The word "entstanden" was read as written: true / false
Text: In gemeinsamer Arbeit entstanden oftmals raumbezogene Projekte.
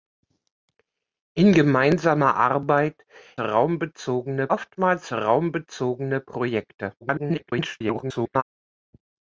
false